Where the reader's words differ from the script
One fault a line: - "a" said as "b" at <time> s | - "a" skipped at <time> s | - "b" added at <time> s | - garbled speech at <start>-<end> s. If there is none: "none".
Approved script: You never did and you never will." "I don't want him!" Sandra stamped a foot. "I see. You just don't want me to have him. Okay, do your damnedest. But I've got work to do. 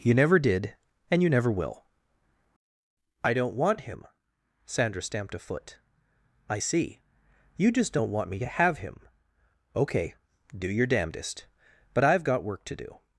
none